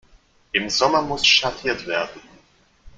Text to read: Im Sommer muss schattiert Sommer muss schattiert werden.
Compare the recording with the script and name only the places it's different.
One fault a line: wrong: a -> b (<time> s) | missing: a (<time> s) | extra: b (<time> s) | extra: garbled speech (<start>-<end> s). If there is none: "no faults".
missing: Sommer muss schattiert (1.8 s)